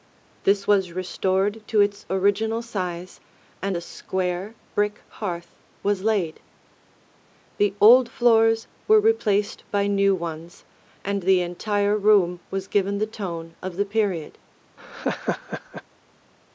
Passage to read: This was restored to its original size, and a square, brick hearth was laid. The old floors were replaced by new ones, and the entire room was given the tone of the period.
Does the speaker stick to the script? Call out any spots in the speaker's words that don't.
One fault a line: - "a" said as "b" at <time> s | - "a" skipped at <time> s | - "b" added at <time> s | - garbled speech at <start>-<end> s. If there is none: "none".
none